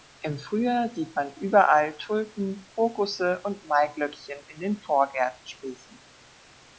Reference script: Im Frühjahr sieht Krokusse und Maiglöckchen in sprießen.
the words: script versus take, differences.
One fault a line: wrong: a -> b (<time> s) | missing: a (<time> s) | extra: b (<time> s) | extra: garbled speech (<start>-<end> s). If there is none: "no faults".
extra: man überall Tulpen (1.1 s)
extra: den Vorgärten (4.6 s)